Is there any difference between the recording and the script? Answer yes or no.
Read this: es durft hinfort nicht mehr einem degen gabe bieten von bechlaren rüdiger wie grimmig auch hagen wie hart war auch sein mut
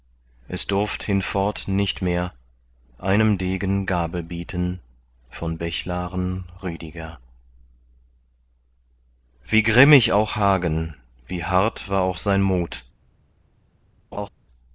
no